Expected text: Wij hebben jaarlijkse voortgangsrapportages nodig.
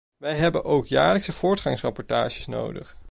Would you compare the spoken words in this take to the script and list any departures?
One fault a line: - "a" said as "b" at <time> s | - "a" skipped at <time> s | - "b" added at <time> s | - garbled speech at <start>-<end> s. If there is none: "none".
- "ook" added at 0.7 s